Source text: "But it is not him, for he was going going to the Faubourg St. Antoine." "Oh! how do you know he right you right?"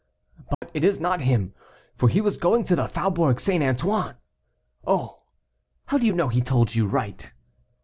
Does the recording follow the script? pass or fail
fail